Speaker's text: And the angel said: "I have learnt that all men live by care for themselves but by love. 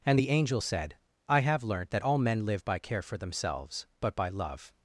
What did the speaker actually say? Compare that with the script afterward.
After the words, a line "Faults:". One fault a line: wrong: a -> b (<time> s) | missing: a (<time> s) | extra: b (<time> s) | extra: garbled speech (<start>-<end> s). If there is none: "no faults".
And the angel said: "I have learnt that all men live by care for themselves but by love.
Faults:
no faults